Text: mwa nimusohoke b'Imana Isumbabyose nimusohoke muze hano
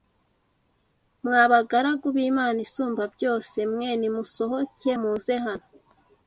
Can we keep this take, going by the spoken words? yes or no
no